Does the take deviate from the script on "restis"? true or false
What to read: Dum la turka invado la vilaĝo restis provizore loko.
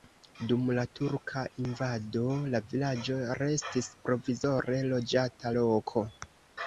false